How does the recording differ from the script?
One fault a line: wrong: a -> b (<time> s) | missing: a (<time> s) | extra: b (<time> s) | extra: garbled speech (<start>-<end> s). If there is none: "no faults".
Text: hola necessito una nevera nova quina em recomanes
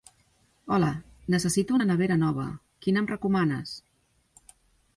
no faults